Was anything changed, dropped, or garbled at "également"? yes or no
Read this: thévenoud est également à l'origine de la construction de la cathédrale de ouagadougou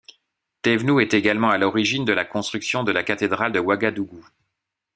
no